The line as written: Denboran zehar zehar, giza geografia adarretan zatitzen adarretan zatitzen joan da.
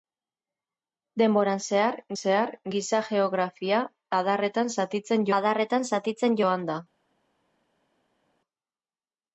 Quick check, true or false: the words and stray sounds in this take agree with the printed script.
true